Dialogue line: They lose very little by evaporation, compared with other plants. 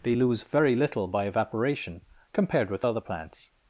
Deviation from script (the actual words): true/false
false